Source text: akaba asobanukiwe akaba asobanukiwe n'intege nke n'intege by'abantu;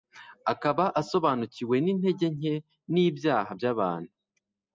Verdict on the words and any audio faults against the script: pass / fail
fail